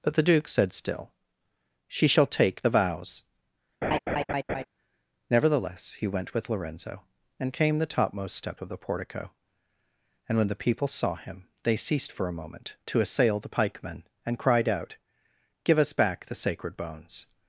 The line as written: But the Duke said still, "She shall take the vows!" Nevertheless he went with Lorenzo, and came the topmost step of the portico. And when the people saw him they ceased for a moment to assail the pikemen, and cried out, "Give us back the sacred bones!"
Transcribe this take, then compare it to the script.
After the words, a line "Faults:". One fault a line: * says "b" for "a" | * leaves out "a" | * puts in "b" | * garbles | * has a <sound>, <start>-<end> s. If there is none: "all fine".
But the Duke said still, "She shall take the vows!" Nevertheless he went with Lorenzo, and came the topmost step of the portico. And when the people saw him they ceased for a moment to assail the pikemen, and cried out, "Give us back the sacred bones!"
Faults:
* has a laugh, 3.8-4.6 s